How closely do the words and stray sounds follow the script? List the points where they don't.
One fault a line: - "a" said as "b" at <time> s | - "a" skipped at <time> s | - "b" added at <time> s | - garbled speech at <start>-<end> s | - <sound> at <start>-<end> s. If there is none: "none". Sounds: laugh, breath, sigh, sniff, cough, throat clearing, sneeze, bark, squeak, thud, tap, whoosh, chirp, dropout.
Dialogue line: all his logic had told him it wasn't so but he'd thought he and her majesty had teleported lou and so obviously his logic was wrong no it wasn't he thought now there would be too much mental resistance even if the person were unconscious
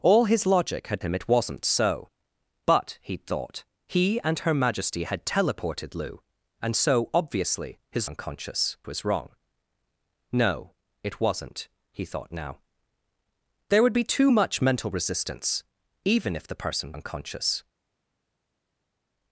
- "told" skipped at 1.0 s
- "logic" said as "unconscious" at 8.0 s
- "were" skipped at 16.9 s